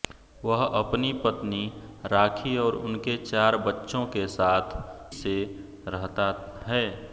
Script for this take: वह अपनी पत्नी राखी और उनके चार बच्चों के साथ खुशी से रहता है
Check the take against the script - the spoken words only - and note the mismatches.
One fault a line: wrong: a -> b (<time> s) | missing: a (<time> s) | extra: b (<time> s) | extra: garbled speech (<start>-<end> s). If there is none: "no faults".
missing: खुशी (4.8 s)